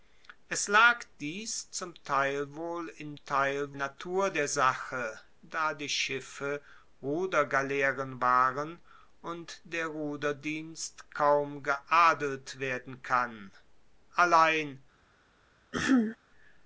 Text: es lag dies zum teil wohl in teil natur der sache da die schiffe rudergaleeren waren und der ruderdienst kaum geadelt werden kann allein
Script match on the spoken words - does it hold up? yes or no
yes